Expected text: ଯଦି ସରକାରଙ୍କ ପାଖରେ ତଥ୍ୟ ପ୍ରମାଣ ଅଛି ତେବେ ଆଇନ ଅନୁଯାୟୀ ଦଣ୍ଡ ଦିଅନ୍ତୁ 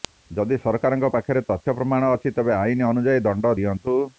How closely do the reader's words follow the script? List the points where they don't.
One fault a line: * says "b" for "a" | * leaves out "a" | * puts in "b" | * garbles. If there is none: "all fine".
all fine